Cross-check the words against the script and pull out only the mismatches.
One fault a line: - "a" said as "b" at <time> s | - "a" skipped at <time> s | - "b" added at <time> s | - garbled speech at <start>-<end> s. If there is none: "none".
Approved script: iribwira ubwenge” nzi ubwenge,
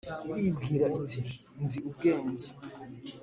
- "ubwenge" said as "iti" at 1.0 s